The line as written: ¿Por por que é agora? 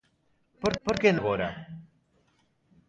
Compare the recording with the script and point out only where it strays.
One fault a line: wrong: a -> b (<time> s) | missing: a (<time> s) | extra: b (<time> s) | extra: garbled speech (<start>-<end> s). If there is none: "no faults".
no faults